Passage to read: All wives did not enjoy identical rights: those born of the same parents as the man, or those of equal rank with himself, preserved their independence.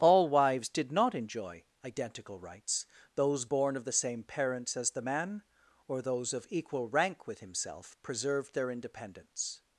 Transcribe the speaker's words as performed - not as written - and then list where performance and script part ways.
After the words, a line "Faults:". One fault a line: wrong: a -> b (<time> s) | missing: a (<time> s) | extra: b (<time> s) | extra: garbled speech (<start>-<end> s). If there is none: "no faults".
All wives did not enjoy identical rights: those born of the same parents as the man, or those of equal rank with himself, preserved their independence.
Faults:
no faults